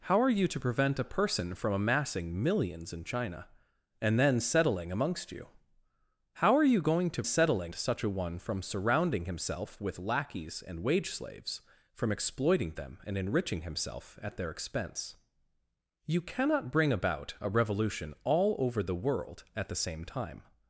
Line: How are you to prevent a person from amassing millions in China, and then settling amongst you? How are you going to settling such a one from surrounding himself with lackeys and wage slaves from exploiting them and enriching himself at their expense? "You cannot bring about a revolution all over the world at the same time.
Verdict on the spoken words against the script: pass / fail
pass